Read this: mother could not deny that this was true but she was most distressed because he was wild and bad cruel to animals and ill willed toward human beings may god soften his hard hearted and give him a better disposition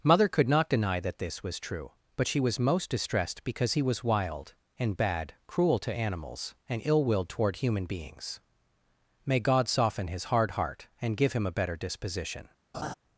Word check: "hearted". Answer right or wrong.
wrong